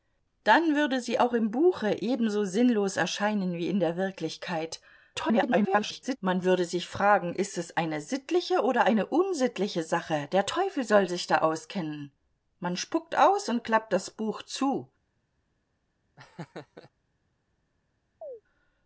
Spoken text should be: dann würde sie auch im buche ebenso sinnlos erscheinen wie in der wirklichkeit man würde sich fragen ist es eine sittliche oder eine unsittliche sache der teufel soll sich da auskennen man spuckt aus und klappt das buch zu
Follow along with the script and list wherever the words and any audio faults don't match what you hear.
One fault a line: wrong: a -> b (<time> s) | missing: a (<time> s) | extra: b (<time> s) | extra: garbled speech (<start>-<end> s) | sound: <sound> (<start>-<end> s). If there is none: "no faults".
extra: garbled speech (5.1-6.2 s)
sound: laugh (16.2-16.9 s)
sound: chirp (18.2-18.4 s)